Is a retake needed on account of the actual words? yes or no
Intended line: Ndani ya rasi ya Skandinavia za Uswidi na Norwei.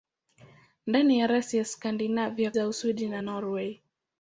no